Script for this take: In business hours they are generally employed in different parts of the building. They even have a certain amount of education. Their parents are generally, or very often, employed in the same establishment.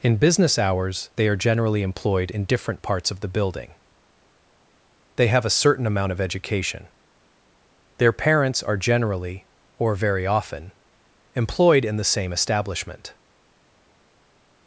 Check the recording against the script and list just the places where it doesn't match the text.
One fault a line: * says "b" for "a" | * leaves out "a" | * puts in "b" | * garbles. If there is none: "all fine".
* leaves out "even"